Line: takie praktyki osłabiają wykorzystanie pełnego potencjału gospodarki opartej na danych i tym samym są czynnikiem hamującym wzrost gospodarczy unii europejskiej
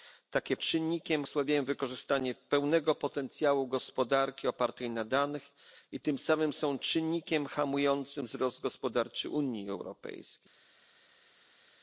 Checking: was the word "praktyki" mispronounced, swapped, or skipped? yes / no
yes